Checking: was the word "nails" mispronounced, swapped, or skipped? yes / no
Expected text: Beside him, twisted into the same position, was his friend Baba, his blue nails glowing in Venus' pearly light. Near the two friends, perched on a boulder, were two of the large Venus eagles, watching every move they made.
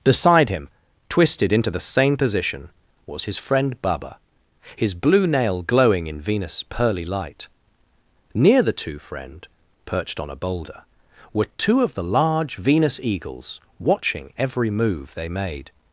yes